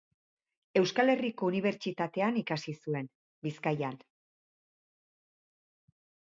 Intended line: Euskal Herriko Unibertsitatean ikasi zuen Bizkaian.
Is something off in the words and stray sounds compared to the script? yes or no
no